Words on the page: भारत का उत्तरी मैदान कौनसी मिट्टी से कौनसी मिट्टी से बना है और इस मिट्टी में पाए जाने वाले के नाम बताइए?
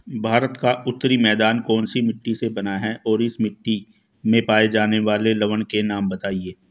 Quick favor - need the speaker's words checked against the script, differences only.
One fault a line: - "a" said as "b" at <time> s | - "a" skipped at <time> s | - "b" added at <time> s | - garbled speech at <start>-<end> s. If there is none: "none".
- "कौनसी मिट्टी से" skipped at 2.5 s
- "लवण" added at 5.3 s